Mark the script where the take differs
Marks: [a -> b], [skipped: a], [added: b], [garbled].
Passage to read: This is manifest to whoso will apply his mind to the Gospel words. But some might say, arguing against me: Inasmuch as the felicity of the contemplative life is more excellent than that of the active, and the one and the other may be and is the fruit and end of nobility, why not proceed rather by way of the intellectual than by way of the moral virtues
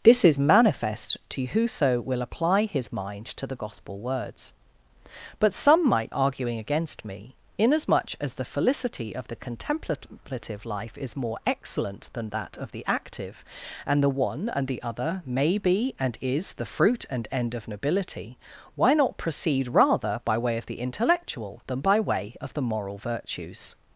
This is manifest to whoso will apply his mind to the Gospel words. But some might [skipped: say,] arguing against me: Inasmuch as the felicity of the contemplative life is more excellent than that of the active, and the one and the other may be and is the fruit and end of nobility, why not proceed rather by way of the intellectual than by way of the moral virtues